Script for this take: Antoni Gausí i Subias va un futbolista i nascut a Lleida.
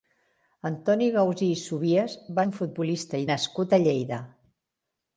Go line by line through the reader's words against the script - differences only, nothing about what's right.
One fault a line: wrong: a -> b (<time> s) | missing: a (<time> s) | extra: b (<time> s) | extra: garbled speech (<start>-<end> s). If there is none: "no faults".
no faults